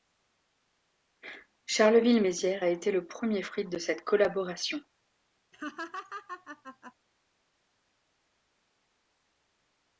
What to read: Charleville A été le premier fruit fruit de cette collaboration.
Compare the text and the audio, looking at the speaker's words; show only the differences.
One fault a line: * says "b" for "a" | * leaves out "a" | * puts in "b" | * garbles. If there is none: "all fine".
* puts in "Mézières"
* leaves out "fruit"